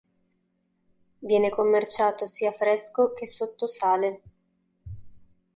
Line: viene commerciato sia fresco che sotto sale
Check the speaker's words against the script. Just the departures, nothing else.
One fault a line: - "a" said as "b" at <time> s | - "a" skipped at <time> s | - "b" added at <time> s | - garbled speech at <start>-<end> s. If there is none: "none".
none